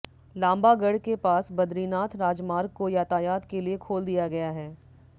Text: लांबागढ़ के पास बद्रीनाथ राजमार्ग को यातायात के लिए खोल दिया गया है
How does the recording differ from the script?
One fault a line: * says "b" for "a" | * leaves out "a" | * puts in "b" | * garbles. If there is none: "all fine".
all fine